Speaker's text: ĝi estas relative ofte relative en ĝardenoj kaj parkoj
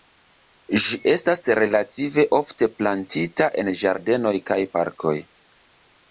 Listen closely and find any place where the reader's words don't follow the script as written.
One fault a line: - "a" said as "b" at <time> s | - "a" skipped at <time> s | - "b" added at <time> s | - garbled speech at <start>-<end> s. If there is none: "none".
- "relative" said as "plantita" at 2.8 s